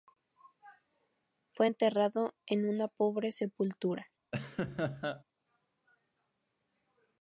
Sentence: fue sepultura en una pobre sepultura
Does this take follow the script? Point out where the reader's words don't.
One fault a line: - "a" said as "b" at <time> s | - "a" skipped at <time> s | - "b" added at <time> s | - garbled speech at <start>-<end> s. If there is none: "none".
- "sepultura" said as "enterrado" at 1.7 s